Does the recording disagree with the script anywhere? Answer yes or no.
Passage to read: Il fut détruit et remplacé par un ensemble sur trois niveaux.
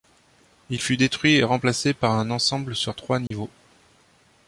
no